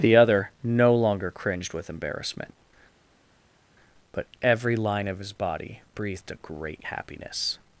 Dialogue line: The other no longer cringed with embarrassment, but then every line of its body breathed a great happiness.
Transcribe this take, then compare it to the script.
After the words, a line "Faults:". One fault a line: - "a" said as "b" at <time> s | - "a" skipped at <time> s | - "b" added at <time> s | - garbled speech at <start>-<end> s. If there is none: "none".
The other no longer cringed with embarrassment, but every line of his body breathed a great happiness.
Faults:
- "then" skipped at 4.2 s
- "its" said as "his" at 5.2 s